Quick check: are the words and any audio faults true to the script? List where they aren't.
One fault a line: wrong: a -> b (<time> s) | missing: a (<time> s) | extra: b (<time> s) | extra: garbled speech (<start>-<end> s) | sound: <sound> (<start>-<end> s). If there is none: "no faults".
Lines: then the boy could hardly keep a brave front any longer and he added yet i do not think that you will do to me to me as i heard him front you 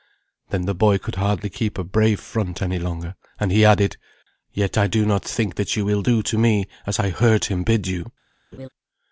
missing: to me (6.7 s)
wrong: front -> bid (7.6 s)
sound: laugh (8.5-8.7 s)